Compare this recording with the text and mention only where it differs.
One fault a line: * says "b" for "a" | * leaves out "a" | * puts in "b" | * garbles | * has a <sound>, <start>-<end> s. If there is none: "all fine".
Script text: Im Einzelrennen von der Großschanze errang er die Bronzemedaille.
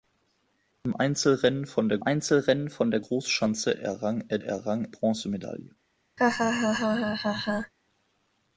* puts in "Einzelrennen von der"
* says "errang" for "die"
* has a laugh, 6.2-7.7 s